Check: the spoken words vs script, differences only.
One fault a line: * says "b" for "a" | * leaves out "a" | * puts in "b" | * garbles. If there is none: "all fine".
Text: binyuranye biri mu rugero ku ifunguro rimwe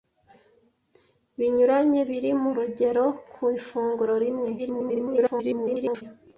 * garbles